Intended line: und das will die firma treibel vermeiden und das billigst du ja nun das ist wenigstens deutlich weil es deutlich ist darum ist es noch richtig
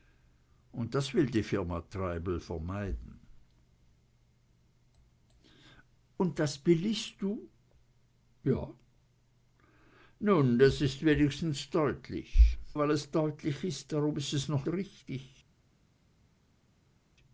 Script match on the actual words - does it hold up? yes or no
yes